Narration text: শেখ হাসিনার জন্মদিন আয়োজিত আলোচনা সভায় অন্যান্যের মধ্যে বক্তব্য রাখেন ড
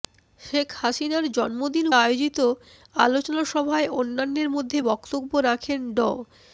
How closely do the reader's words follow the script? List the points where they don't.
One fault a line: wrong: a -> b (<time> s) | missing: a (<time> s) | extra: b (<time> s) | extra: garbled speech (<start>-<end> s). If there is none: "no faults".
no faults